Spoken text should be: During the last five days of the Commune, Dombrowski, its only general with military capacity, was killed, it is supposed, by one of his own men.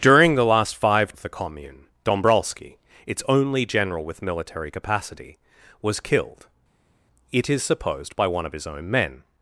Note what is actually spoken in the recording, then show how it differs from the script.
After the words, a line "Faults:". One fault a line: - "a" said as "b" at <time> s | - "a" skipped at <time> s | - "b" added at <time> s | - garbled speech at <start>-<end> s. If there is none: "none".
During the last five of the Commune, Dombrowski, its only general with military capacity, was killed, it is supposed, by one of his own men.
Faults:
- "days" skipped at 1.1 s